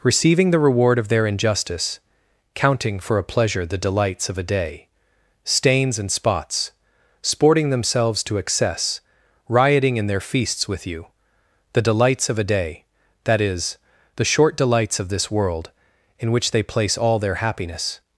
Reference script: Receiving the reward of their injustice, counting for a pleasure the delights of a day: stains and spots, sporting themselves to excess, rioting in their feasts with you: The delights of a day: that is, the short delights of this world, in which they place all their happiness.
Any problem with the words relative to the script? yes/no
no